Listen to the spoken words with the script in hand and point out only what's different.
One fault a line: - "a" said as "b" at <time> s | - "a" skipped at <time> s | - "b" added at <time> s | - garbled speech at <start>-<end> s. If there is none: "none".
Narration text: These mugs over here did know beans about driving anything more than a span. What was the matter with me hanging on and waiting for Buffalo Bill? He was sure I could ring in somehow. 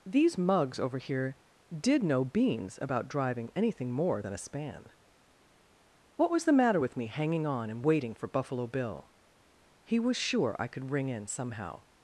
none